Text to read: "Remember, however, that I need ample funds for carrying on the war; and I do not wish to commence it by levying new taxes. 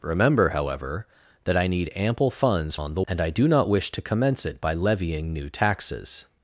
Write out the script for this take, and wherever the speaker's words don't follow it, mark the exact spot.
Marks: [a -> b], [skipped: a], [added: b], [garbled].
"Remember, however, that I need ample funds [skipped: for carrying] on the [skipped: war;] and I do not wish to commence it by levying new taxes.